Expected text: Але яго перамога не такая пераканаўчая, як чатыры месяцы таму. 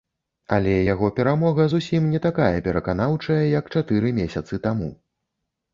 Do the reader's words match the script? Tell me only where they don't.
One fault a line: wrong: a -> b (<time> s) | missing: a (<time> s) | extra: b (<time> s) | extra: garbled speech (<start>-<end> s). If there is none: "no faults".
extra: зусім (1.7 s)